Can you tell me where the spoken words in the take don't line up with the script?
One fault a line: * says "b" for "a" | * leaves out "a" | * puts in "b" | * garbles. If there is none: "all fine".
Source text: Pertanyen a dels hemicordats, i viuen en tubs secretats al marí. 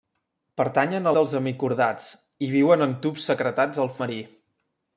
all fine